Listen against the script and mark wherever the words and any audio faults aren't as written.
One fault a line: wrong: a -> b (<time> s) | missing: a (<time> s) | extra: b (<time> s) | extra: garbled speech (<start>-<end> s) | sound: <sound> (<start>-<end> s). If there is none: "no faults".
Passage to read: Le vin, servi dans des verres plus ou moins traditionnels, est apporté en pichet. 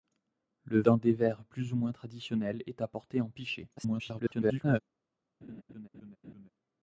missing: vin servi (0.8 s)
extra: garbled speech (3.8-4.8 s)
sound: laugh (5.4-6.5 s)